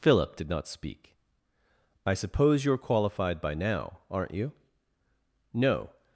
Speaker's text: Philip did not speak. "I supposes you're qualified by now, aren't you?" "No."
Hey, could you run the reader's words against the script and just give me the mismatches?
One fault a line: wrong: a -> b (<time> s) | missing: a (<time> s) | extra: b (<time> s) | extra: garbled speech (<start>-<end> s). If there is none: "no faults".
wrong: supposes -> suppose (2.1 s)